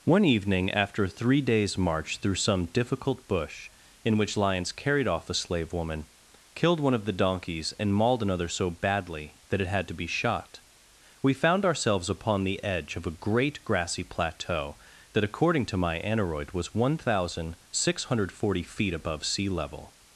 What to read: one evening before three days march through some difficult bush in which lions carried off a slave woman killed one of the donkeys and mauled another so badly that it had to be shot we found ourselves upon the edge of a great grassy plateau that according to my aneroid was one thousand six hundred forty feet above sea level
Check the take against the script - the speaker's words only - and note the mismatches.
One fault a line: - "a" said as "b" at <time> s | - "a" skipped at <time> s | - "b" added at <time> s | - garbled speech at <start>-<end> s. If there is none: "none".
- "before" said as "after" at 0.7 s